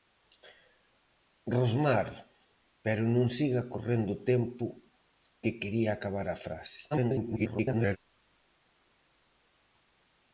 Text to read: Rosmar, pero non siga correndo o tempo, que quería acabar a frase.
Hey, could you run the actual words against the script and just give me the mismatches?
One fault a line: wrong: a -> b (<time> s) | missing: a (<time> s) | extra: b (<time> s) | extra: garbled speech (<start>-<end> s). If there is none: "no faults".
extra: garbled speech (6.9-8.0 s)